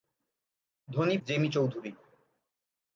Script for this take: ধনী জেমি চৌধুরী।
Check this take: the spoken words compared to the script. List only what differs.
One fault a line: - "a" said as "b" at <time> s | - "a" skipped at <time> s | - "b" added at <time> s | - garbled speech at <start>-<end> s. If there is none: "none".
none